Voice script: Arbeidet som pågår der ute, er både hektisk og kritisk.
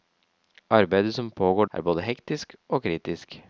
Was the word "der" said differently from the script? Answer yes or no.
yes